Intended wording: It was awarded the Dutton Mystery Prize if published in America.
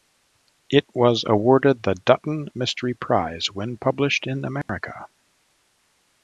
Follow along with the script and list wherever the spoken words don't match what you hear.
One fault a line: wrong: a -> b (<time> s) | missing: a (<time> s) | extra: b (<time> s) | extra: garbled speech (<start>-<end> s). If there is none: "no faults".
wrong: if -> when (3.5 s)